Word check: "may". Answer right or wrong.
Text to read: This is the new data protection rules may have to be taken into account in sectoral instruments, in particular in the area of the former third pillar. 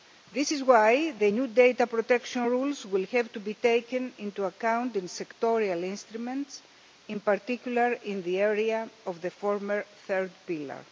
wrong